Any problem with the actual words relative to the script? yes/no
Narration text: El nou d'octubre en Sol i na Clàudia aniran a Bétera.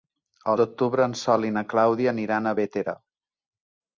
yes